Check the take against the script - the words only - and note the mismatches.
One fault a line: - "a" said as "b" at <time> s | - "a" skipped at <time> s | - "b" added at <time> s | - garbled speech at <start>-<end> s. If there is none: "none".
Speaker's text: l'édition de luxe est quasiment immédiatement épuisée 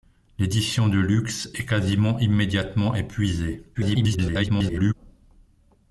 - garbled speech at 3.7-4.9 s